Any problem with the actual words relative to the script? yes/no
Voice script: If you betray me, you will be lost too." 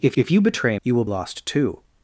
yes